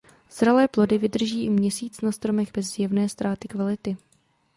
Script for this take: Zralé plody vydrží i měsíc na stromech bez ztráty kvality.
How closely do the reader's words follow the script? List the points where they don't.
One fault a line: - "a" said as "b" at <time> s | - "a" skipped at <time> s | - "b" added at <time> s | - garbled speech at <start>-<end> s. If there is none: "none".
- "zjevné" added at 2.7 s